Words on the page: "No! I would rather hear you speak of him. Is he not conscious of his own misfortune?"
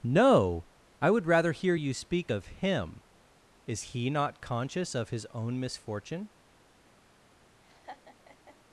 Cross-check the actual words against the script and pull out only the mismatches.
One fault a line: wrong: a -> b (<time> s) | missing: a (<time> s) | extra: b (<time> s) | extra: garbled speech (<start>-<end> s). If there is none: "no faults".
no faults